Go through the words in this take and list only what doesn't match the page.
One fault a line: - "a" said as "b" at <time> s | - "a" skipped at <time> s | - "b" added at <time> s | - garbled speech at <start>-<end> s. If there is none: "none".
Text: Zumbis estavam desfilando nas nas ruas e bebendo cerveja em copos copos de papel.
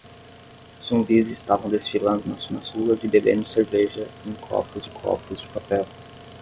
none